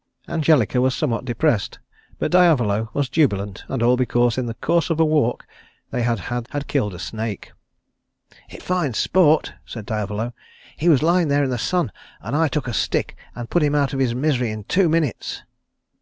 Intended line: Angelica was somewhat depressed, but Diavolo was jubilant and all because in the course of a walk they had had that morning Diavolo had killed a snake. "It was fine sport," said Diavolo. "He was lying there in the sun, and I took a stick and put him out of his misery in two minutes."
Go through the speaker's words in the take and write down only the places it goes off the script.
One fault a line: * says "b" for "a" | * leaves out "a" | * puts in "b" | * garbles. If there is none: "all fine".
* leaves out "that morning Diavolo"
* leaves out "was"